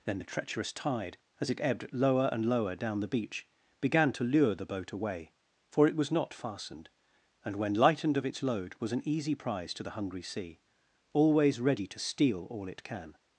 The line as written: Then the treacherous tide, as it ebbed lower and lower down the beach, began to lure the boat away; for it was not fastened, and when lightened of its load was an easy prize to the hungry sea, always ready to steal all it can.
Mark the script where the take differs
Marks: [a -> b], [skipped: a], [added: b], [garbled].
Then the treacherous tide, as it ebbed lower and lower down the beach, began to lure the boat away; for it was not fastened, and when lightened of its load was an easy prize to the hungry sea, always ready to steal all it can.